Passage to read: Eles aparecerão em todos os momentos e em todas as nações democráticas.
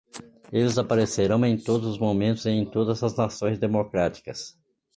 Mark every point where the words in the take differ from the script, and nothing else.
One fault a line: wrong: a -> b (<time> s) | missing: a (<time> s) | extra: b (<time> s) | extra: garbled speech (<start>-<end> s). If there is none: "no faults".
no faults